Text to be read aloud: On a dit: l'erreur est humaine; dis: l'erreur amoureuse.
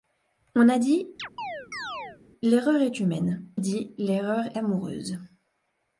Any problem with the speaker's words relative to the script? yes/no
no